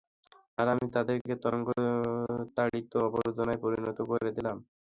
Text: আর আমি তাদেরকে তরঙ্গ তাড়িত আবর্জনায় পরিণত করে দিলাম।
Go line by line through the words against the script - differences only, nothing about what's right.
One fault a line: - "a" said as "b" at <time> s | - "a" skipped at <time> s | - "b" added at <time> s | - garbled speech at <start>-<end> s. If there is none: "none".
none